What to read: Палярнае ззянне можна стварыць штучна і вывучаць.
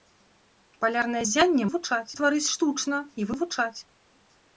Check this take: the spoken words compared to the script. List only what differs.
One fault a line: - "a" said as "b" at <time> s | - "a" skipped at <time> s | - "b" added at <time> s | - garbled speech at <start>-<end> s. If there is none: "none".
- "можна" said as "вывучаць" at 1.6 s